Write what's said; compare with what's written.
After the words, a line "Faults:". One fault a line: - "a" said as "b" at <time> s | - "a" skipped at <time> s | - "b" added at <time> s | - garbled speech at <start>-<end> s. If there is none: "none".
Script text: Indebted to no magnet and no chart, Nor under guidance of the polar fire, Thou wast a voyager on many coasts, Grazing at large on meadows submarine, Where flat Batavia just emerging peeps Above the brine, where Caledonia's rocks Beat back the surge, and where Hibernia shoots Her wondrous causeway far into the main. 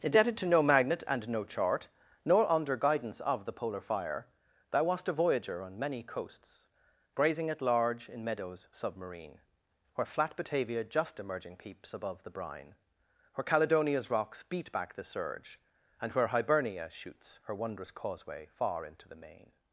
Indebted to no magnet and no chart, Nor under guidance of the polar fire, Thou wast a voyager on many coasts, Grazing at large in meadows submarine, Where flat Batavia just emerging peeps Above the brine, where Caledonia's rocks Beat back the surge, and where Hibernia shoots Her wondrous causeway far into the main.
Faults:
- "on" said as "in" at 8.1 s